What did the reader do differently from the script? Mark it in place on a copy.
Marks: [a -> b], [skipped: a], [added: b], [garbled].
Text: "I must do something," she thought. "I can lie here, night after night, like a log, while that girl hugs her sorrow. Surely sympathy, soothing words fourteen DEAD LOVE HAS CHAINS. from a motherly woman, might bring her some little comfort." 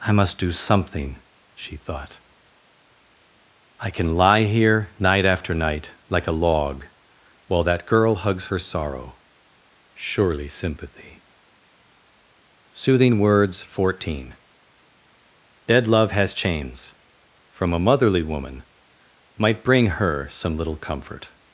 "I must do something," she thought. "I can lie here, night after night, like a log, while that girl hugs her sorrow. Surely sympathy, soothing words fourteen DEAD LOVE HAS CHAINS. from a motherly woman, might bring her some little comfort."